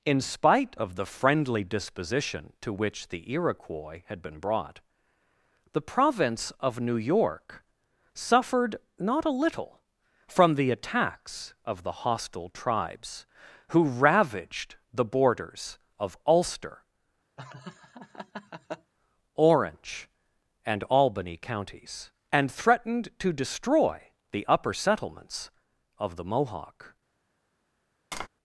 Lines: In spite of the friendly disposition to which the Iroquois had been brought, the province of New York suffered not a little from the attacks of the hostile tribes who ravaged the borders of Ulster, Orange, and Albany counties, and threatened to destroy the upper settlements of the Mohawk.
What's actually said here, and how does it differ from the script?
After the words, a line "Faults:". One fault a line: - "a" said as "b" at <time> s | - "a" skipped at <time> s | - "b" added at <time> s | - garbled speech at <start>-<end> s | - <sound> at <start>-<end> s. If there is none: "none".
In spite of the friendly disposition to which the Iroquois had been brought, the province of New York suffered not a little from the attacks of the hostile tribes who ravaged the borders of Ulster, Orange, and Albany counties, and threatened to destroy the upper settlements of the Mohawk.
Faults:
- laugh at 17.4-18.9 s
- tap at 28.1-28.3 s